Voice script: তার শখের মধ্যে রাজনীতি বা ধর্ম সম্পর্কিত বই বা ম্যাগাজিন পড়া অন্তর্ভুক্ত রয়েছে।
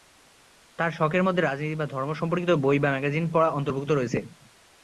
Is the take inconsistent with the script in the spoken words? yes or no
no